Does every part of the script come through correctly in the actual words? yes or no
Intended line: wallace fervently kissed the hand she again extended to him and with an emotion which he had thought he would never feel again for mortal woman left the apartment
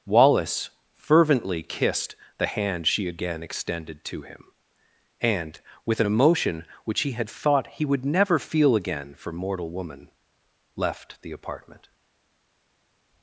yes